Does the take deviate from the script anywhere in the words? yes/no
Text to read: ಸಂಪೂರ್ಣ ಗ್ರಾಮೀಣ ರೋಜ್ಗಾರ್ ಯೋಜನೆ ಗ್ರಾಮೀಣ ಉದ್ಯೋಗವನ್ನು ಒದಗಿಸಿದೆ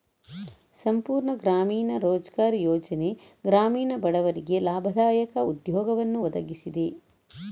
yes